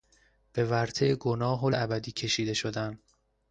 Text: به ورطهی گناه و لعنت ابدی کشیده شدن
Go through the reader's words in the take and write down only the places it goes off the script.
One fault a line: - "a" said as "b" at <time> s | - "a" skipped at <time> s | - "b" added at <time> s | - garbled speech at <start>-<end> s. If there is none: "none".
- "لعنت" skipped at 1.7 s